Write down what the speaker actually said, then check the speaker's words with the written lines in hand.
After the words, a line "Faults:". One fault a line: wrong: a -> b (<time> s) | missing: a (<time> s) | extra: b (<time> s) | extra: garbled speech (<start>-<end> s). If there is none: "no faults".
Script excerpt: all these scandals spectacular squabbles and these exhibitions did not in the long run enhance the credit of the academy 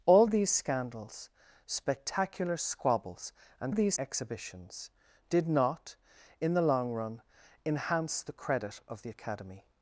all these scandals spectacular squabbles and these exhibitions did not in the long run enhance the credit of the academy
Faults:
no faults